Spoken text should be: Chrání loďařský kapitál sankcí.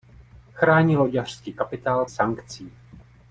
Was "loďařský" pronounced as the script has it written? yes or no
yes